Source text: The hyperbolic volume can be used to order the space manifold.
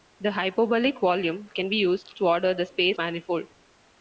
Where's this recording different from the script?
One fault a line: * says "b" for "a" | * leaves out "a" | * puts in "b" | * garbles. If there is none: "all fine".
all fine